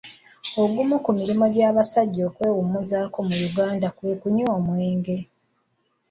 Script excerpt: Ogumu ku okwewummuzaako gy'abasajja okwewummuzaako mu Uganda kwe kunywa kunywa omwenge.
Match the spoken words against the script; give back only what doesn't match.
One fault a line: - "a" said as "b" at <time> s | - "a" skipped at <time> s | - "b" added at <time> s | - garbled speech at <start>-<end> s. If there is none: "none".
- "okwewummuzaako" said as "mirimu" at 1.2 s
- "kunywa" skipped at 4.5 s